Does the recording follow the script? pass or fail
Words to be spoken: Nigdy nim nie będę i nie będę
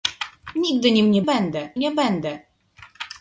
pass